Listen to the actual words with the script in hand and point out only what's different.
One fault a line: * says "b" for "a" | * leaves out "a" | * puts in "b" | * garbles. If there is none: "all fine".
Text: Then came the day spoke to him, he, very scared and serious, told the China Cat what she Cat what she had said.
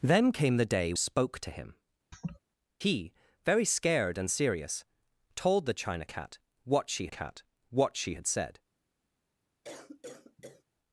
all fine